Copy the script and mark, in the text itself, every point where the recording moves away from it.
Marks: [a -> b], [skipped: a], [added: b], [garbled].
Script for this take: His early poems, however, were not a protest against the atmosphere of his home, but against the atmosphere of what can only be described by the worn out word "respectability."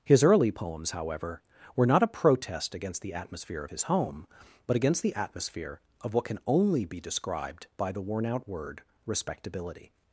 His early poems, however, were not a protest against the atmosphere of his home, but against the atmosphere of what can only be described by the worn out word "respectability."